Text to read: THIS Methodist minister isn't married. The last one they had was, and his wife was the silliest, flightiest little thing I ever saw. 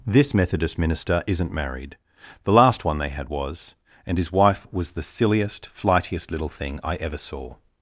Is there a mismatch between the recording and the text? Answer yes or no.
no